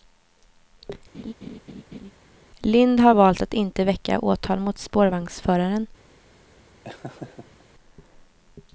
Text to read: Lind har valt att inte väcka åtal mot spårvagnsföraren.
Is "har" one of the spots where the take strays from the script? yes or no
no